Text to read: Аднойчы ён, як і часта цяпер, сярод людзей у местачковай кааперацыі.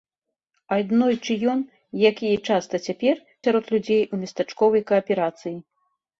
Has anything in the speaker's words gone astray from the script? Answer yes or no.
no